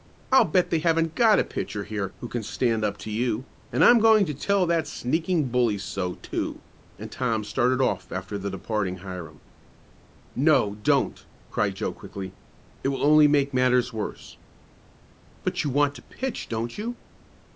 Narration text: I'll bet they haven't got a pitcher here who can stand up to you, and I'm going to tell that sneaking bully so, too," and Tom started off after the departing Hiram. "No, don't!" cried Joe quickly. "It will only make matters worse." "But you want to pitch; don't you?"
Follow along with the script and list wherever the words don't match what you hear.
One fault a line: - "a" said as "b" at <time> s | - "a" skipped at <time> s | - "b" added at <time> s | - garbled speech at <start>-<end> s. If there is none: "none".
none